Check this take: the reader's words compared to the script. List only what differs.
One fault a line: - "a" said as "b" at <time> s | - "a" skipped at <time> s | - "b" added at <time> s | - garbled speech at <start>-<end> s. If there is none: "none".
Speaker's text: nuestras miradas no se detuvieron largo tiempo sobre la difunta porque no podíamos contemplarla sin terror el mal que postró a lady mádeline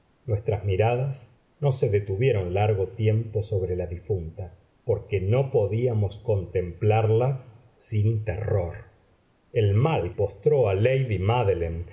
- "que" skipped at 10.2 s